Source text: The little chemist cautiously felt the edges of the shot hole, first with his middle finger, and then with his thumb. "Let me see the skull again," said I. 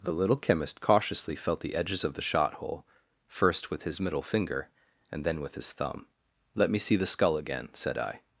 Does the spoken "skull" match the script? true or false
true